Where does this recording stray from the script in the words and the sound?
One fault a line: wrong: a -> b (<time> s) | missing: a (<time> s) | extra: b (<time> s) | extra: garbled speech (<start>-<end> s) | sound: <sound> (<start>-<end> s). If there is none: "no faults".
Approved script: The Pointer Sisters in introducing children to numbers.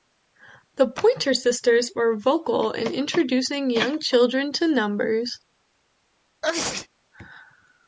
extra: were vocal (1.9 s)
extra: young (3.7 s)
sound: sneeze (6.4-6.9 s)